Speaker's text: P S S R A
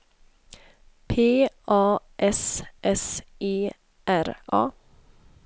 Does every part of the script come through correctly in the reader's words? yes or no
no